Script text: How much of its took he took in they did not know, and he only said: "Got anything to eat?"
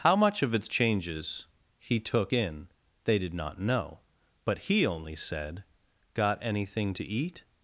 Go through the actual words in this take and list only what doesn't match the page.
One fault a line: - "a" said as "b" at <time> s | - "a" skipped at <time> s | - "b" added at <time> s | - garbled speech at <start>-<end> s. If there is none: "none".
- "took" said as "changes" at 0.7 s
- "and" said as "but" at 4.4 s